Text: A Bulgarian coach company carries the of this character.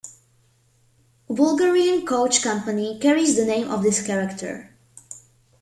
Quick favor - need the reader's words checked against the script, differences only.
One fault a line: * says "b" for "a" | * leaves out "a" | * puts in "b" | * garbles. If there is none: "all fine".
* puts in "name"